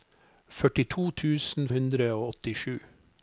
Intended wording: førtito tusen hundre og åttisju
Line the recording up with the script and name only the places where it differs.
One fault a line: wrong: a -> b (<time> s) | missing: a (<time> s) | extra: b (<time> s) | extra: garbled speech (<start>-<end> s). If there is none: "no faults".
no faults